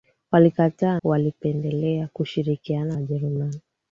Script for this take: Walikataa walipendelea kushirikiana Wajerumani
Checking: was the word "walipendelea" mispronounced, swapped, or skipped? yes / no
no